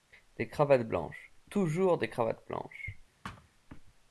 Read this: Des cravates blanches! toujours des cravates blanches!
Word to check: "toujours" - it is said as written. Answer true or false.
true